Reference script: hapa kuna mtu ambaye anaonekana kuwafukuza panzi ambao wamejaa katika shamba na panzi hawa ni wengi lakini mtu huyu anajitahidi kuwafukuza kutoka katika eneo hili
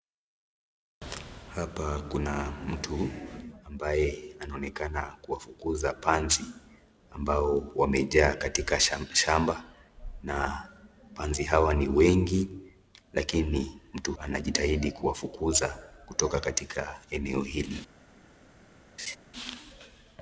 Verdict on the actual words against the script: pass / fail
fail